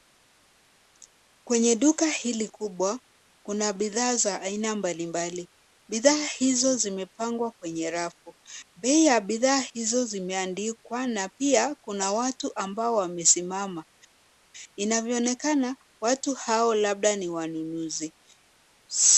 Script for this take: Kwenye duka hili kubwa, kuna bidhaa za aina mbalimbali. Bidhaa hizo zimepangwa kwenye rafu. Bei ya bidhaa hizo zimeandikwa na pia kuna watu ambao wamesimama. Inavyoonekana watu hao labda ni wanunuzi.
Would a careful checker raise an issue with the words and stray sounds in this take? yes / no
no